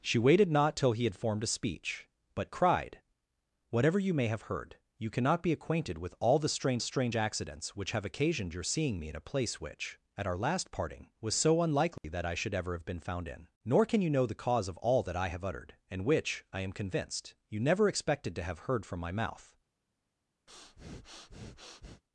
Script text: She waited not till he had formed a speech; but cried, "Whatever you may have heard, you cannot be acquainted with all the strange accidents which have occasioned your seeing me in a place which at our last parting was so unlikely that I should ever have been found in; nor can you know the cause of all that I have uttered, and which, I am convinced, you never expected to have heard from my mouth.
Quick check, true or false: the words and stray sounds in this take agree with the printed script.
false